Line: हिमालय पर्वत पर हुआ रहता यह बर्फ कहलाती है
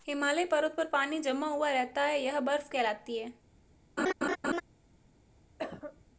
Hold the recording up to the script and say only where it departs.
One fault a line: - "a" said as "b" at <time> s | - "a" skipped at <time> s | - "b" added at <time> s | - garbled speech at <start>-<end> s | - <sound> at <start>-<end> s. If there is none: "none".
- "पानी जमा" added at 0.9 s
- "है" added at 2.0 s
- laugh at 4.0-4.6 s
- cough at 5.6-6.1 s